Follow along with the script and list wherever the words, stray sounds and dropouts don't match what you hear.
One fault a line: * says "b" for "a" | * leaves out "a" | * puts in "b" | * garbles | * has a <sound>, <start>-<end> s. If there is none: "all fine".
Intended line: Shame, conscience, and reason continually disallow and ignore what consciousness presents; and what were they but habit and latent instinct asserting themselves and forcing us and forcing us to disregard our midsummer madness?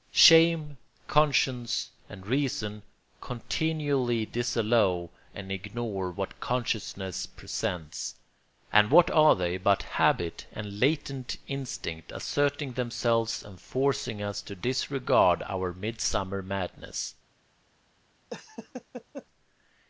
* says "are" for "were"
* leaves out "and forcing us"
* has a laugh, 18.3-19.3 s